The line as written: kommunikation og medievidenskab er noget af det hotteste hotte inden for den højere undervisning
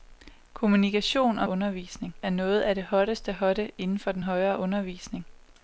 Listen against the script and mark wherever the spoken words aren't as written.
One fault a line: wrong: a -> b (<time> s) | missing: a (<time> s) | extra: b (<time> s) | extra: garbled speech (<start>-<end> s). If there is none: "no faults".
wrong: medievidenskab -> undervisning (1.5 s)